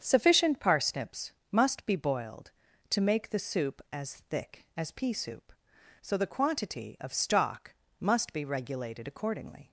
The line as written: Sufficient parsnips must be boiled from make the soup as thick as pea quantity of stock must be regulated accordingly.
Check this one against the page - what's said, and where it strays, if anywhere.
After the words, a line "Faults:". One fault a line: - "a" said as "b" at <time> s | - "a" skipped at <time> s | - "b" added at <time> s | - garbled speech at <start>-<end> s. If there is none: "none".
Sufficient parsnips must be boiled to make the soup as thick as pea soup, so the quantity of stock must be regulated accordingly.
Faults:
- "from" said as "to" at 2.9 s
- "soup so the" added at 5.1 s